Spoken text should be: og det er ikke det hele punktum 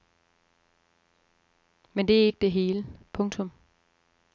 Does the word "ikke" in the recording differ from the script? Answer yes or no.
no